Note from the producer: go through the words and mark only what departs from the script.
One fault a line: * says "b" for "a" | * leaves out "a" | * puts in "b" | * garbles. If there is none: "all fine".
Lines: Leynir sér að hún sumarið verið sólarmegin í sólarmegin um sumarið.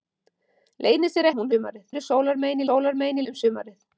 all fine